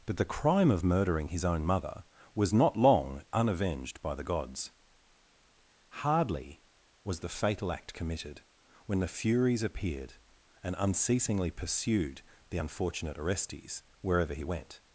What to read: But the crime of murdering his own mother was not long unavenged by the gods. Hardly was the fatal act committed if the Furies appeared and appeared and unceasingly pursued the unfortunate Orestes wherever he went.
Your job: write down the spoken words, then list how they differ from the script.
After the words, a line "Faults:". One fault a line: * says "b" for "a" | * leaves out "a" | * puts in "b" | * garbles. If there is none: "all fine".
But the crime of murdering his own mother was not long unavenged by the gods. Hardly was the fatal act committed when the Furies appeared and unceasingly pursued the unfortunate Orestes wherever he went.
Faults:
* says "when" for "if"
* leaves out "appeared and"